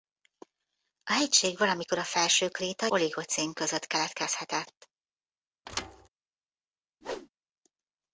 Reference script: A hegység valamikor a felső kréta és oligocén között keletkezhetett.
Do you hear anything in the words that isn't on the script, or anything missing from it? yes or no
yes